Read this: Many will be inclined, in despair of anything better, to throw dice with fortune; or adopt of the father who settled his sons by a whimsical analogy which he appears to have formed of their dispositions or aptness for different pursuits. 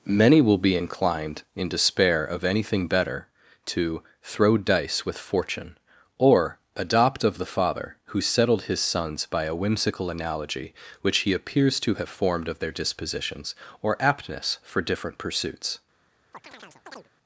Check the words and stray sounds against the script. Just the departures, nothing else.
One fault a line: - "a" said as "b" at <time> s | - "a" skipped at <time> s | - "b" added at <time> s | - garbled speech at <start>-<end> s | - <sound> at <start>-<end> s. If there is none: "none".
- chirp at 16.3-17.1 s